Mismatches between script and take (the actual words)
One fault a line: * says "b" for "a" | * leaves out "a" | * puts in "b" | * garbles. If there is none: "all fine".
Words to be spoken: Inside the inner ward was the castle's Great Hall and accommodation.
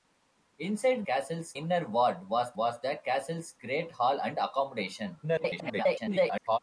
* says "castle's" for "the"
* puts in "was"
* garbles